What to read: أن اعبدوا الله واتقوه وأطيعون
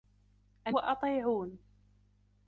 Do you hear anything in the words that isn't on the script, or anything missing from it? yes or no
yes